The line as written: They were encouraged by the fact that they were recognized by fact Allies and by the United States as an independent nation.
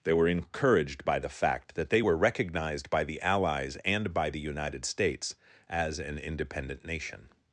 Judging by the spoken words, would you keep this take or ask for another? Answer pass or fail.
fail